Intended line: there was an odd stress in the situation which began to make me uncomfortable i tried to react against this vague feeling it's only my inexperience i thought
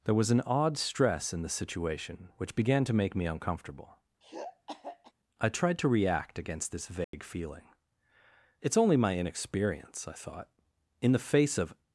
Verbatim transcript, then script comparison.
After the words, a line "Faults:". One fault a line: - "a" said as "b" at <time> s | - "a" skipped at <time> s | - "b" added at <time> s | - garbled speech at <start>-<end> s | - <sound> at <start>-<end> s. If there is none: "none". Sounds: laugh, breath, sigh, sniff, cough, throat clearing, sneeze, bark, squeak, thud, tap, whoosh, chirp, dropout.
there was an odd stress in the situation which began to make me uncomfortable i tried to react against this vague feeling it's only my inexperience i thought in the face of
Faults:
- throat clearing at 4.2-5.1 s
- dropout at 7.0-7.1 s
- "in the face of" added at 11.0 s